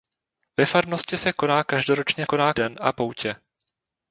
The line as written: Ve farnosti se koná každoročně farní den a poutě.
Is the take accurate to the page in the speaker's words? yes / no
no